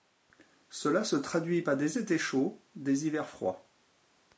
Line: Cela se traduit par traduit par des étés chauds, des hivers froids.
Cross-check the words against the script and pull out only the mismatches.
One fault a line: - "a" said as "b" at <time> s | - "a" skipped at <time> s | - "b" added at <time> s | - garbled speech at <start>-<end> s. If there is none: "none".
- "traduit par" skipped at 1.7 s